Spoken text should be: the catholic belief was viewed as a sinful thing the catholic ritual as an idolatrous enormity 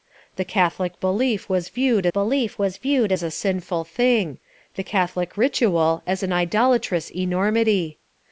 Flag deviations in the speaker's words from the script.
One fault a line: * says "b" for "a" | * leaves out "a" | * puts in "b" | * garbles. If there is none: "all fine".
* puts in "belief was viewed"